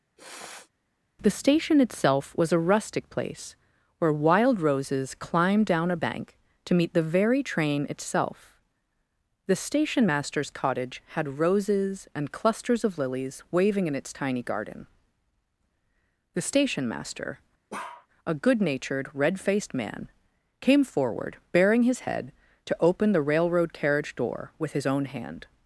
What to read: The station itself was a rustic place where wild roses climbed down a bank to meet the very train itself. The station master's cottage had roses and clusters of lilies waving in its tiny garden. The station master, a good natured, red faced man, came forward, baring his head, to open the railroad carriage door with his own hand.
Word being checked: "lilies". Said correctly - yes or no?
yes